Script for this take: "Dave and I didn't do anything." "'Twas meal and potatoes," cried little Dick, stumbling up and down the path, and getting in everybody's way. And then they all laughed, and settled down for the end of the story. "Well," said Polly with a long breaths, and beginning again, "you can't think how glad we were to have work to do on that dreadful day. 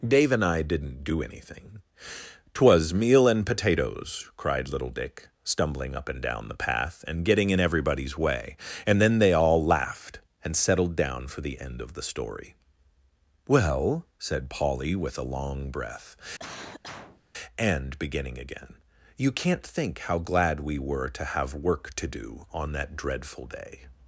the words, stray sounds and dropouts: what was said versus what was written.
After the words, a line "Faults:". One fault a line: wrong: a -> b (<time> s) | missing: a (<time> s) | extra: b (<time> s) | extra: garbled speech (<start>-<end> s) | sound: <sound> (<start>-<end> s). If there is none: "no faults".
"Dave and I didn't do anything." "'Twas meal and potatoes," cried little Dick, stumbling up and down the path, and getting in everybody's way. And then they all laughed, and settled down for the end of the story. "Well," said Polly with a long breath, and beginning again, "you can't think how glad we were to have work to do on that dreadful day.
Faults:
wrong: breaths -> breath (15.7 s)
sound: cough (16.4-17.2 s)